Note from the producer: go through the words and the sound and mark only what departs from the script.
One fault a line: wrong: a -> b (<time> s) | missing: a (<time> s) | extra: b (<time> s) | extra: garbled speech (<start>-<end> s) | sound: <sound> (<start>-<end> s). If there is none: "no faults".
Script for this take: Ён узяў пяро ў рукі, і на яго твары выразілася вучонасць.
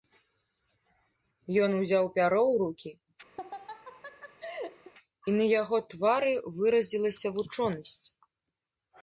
sound: laugh (3.4-4.9 s)